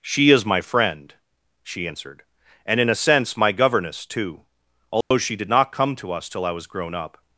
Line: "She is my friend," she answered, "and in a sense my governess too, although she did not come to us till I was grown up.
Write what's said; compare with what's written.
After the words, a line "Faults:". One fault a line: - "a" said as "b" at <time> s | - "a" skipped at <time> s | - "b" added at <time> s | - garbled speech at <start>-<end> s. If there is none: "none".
"She is my friend," she answered, "and in a sense my governess too, although she did not come to us till I was grown up.
Faults:
none